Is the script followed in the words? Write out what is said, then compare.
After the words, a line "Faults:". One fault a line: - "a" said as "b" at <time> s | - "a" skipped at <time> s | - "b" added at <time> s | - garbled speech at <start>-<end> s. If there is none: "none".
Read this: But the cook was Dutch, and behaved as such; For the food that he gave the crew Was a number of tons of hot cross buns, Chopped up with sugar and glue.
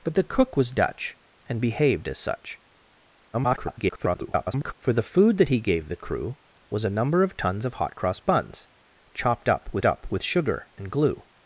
But the cook was Dutch, and behaved as such; [garbled] For the food that he gave the crew Was a number of tons of hot cross buns, Chopped up with up with sugar and glue.
Faults:
- garbled speech at 3.3-4.7 s
- "up with" added at 9.8 s